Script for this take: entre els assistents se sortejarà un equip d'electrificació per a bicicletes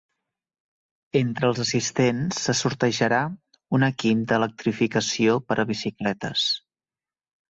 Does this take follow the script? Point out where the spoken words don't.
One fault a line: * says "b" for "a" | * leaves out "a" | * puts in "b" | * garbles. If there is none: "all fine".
all fine